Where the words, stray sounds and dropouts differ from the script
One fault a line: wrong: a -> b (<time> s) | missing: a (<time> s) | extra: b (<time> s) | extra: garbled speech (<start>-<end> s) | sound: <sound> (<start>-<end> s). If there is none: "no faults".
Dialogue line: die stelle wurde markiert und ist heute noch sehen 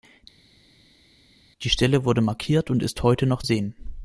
no faults